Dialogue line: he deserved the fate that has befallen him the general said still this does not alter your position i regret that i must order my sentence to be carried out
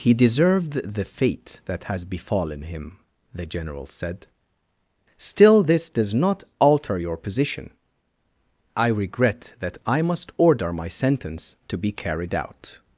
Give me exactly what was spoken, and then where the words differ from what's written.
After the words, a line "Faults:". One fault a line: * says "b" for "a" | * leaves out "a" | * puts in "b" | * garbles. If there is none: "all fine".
he deserved the fate that has befallen him the general said still this does not alter your position i regret that i must order my sentence to be carried out
Faults:
all fine